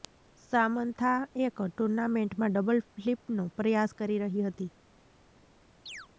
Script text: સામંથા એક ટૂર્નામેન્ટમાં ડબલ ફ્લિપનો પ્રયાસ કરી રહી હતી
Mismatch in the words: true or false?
false